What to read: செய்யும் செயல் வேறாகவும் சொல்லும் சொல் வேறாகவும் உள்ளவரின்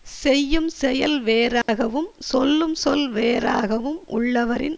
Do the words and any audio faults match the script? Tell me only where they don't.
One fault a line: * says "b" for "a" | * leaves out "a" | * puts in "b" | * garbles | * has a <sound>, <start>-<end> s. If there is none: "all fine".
* has a dropout, 1.6-1.7 s